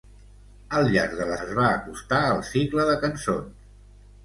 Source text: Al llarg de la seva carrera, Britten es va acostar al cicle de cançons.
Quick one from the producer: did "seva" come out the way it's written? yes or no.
no